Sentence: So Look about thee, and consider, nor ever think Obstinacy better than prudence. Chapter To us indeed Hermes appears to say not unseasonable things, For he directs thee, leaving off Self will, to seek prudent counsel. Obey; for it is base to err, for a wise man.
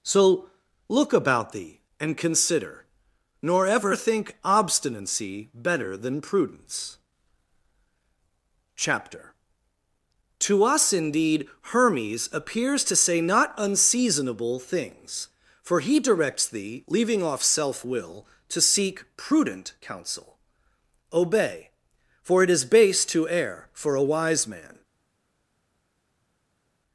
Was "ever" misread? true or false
false